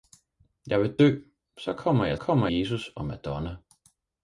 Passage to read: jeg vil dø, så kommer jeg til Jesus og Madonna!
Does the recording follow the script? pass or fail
fail